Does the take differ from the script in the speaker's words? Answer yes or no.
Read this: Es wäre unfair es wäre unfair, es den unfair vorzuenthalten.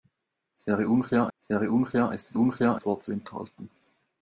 no